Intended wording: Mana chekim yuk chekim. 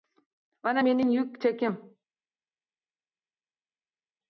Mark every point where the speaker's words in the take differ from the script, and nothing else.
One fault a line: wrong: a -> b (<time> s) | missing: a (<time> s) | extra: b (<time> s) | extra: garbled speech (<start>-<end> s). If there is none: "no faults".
wrong: chekim -> mening (0.8 s)